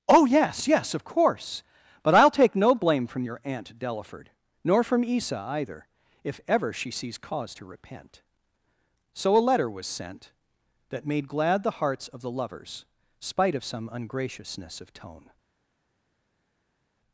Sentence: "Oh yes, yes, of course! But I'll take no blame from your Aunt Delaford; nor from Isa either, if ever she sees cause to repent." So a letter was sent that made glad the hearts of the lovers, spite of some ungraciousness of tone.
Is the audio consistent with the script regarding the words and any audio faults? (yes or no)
yes